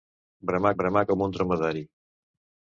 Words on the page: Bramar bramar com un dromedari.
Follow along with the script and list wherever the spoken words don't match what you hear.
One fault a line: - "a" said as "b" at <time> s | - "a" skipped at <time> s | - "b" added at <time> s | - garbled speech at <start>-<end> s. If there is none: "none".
none